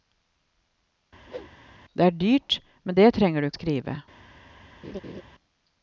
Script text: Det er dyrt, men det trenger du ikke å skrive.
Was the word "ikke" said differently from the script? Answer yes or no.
yes